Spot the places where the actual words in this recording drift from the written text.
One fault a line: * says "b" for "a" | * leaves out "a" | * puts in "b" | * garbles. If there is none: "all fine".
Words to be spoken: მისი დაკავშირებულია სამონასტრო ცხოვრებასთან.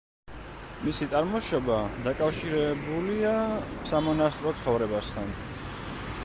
* puts in "წარმოშობა"